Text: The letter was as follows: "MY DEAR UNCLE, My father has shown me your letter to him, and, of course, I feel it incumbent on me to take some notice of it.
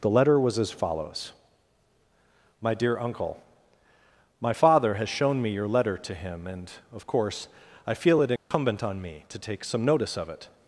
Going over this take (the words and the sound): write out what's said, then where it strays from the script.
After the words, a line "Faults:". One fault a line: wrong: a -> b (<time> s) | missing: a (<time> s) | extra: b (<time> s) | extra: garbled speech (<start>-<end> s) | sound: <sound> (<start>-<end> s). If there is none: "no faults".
The letter was as follows: "MY DEAR UNCLE, My father has shown me your letter to him, and, of course, I feel it incumbent on me to take some notice of it.
Faults:
sound: dropout (8.4-8.5 s)